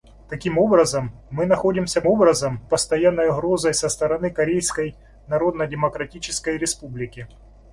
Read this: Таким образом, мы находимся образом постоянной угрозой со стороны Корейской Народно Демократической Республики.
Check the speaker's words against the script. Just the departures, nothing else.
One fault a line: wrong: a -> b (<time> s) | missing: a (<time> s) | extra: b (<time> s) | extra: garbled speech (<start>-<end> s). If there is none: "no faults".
no faults